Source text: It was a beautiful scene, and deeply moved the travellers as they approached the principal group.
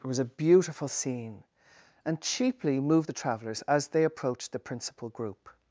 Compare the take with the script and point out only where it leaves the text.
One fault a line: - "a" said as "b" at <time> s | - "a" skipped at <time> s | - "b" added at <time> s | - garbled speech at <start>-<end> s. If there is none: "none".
- "deeply" said as "cheaply" at 2.2 s